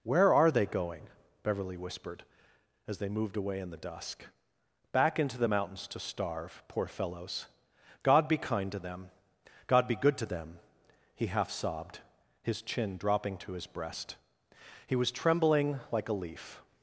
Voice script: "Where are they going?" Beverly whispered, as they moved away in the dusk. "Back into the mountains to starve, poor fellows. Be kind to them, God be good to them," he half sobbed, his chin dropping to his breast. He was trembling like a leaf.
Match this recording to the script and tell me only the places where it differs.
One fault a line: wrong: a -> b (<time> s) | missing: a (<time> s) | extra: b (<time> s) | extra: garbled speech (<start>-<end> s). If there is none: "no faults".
extra: God (8.0 s)